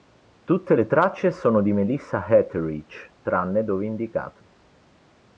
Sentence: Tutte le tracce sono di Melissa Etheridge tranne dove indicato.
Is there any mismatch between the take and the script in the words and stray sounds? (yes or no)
no